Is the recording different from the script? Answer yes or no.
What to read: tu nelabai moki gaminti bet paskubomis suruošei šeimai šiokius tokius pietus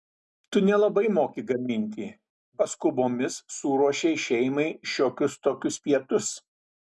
yes